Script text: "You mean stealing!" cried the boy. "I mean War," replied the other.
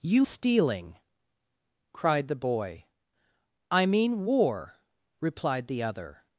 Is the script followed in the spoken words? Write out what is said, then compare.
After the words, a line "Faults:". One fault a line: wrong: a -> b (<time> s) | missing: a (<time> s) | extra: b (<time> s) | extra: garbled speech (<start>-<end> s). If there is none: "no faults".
"You stealing!" cried the boy. "I mean War," replied the other.
Faults:
missing: mean (0.2 s)